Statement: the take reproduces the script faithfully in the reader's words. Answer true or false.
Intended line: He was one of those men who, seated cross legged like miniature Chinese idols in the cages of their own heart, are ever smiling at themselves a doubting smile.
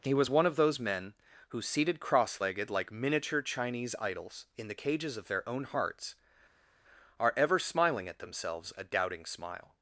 false